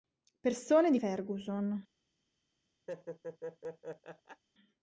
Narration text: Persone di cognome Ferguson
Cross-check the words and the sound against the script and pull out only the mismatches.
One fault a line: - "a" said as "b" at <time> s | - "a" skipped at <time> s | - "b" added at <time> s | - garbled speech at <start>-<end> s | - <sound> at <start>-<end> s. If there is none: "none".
- "cognome" skipped at 1.0 s
- laugh at 2.9-4.4 s